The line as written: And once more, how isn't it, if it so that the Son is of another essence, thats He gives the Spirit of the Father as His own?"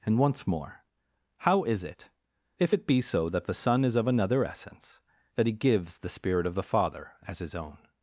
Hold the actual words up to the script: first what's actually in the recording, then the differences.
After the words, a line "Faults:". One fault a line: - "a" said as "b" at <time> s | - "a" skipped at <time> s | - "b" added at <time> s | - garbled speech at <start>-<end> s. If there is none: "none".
And once more, how is it, if it be so that the Son is of another essence, that He gives the Spirit of the Father as His own?"
Faults:
- "isn't" said as "is" at 1.6 s
- "be" added at 2.9 s
- "thats" said as "that" at 5.3 s